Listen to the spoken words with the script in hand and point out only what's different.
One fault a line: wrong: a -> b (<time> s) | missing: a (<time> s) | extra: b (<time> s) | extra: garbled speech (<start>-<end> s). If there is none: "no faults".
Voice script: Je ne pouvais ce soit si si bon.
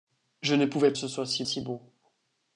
no faults